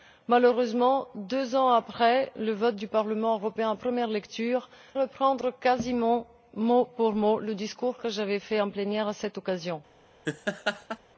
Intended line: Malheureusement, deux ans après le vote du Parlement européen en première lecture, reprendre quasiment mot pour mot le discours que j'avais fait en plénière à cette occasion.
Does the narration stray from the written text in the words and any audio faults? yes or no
yes